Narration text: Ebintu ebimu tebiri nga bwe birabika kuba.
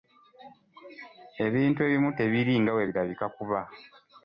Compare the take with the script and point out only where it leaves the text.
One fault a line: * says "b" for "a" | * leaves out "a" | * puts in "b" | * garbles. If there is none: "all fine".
all fine